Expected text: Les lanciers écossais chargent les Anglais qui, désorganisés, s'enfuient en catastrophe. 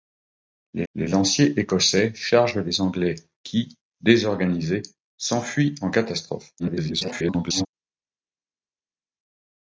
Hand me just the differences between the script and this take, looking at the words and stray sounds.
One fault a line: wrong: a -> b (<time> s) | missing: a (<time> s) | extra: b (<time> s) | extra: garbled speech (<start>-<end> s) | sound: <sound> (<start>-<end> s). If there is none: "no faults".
extra: les (0.9 s)
extra: garbled speech (6.6-7.7 s)